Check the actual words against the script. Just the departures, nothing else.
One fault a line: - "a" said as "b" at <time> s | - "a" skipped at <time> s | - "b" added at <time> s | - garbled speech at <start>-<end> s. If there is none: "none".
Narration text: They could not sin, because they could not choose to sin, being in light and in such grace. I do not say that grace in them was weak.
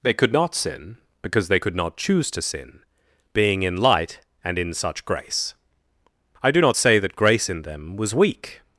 none